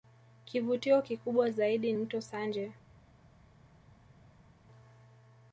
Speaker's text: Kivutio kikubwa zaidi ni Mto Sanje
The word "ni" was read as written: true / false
false